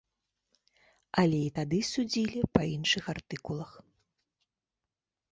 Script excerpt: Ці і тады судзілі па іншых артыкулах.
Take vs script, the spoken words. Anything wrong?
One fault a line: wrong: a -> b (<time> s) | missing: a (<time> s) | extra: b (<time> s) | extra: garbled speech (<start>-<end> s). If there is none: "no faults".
wrong: Ці -> Але (1.2 s)